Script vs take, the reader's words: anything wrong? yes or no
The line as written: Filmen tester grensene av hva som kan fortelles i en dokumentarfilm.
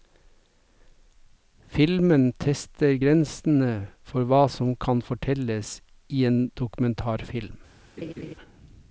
yes